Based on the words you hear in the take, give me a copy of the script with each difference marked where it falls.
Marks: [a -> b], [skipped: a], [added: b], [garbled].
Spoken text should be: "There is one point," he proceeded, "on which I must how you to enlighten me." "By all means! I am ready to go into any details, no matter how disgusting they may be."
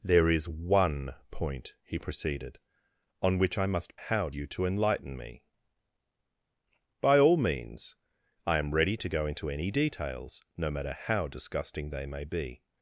"There is one point," he proceeded, "on which I must how you to enlighten me." "By all means! I am ready to go into any details, no matter how disgusting they may be."